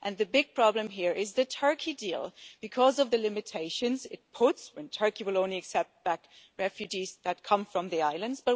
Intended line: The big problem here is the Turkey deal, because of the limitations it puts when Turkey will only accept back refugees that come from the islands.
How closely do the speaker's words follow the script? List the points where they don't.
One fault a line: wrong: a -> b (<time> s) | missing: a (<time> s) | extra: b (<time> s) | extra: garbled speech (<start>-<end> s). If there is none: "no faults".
no faults